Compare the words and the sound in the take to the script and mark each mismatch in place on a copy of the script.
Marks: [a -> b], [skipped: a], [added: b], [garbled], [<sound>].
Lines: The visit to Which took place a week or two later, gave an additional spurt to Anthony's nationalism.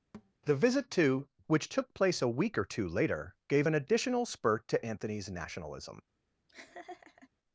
[thud] The visit to Which took place a week or two later, gave an additional spurt to Anthony's nationalism. [laugh]